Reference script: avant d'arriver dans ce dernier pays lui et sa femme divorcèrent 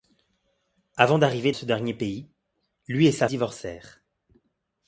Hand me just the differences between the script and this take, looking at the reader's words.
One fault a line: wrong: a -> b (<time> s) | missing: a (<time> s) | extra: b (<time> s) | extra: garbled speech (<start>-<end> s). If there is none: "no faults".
missing: dans (1.5 s)
missing: femme (3.3 s)